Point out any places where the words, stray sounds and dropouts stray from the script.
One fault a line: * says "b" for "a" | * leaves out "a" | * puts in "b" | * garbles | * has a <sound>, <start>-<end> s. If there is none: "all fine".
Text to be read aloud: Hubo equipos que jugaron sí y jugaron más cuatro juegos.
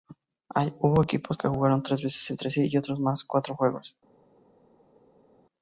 * puts in "tres veces entre"
* says "otros" for "jugaron"